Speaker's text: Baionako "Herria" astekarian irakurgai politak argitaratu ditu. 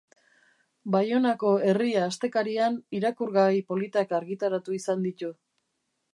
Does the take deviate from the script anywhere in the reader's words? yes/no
yes